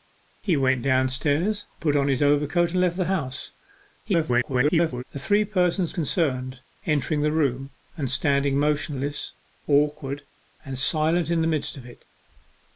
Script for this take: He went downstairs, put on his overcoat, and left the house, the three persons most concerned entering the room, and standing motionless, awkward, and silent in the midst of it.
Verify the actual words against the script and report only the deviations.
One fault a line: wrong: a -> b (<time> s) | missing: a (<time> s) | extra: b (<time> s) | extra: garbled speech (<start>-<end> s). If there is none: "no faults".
extra: garbled speech (4.0-5.0 s)
missing: most (6.0 s)